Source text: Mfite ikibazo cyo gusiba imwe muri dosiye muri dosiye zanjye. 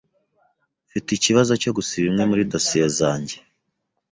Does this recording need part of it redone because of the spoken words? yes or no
yes